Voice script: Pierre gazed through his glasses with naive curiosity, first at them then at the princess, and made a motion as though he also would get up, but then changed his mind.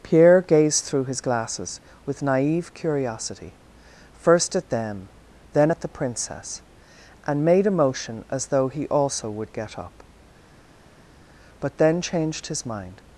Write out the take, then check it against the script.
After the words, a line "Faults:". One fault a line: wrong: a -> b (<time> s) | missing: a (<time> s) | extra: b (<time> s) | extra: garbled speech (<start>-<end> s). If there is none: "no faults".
Pierre gazed through his glasses with naive curiosity, first at them then at the princess, and made a motion as though he also would get up, but then changed his mind.
Faults:
no faults